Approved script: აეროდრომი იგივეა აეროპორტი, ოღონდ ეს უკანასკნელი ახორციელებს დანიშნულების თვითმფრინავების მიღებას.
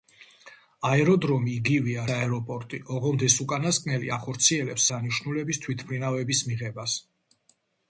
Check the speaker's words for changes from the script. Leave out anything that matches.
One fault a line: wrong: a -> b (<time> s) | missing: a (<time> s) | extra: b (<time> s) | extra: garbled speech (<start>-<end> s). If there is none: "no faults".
no faults